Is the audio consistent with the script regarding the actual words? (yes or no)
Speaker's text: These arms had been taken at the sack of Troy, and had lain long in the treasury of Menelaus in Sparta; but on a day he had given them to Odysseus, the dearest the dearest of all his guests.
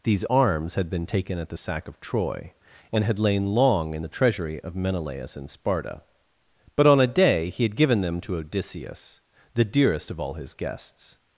no